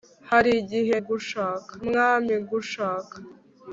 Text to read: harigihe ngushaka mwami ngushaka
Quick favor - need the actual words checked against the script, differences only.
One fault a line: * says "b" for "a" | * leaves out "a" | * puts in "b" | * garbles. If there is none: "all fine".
all fine